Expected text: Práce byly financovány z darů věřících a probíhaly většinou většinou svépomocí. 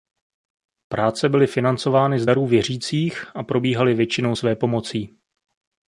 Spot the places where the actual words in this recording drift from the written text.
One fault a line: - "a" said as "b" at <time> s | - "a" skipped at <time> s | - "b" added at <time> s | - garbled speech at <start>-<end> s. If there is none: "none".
- "většinou" skipped at 4.4 s